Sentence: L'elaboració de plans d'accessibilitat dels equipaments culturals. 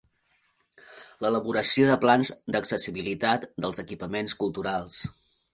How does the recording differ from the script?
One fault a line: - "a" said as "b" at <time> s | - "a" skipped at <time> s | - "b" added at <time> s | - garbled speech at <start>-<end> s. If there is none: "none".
none